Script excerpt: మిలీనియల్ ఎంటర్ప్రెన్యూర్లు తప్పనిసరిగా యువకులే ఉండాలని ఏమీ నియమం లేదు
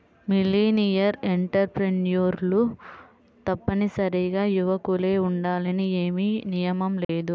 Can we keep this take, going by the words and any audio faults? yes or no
no